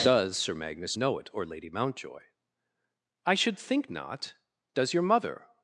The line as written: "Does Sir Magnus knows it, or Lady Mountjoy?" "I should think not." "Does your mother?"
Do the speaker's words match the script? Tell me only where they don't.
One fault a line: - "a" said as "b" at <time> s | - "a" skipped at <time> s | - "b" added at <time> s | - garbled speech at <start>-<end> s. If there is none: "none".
- "knows" said as "know" at 0.9 s